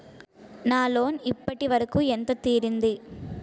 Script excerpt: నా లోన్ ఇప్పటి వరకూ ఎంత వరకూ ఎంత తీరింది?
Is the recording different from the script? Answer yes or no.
yes